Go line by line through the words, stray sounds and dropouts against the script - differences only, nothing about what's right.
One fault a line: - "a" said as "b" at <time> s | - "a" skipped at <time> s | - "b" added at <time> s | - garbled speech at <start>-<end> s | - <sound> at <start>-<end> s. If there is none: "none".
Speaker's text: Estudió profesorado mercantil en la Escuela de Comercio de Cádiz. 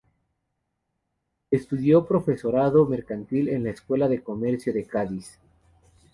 none